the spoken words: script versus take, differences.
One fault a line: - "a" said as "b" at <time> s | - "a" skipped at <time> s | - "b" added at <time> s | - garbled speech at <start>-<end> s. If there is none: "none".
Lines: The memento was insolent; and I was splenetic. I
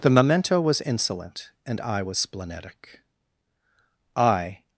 none